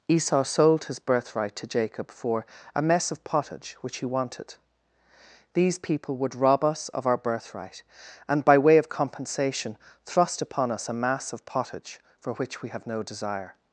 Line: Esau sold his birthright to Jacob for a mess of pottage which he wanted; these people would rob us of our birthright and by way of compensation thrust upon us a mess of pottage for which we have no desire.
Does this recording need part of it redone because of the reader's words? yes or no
yes